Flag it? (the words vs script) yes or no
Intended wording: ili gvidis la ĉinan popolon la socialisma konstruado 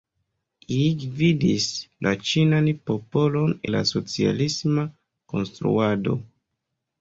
no